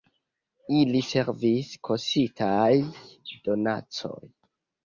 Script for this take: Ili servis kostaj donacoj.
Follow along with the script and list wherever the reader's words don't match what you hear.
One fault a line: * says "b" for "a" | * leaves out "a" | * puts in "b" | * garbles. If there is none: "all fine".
all fine